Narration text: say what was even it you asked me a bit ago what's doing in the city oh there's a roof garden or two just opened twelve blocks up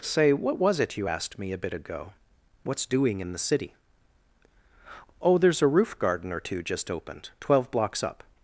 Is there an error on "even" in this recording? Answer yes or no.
yes